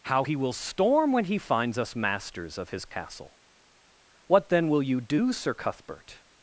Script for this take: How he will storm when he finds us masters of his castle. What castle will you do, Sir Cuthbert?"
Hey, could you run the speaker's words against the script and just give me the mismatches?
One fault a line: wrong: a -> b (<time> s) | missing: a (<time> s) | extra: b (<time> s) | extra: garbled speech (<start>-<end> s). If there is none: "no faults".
wrong: castle -> then (4.5 s)